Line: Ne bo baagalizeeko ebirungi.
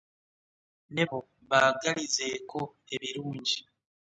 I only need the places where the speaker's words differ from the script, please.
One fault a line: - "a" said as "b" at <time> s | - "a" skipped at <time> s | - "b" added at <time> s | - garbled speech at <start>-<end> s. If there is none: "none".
none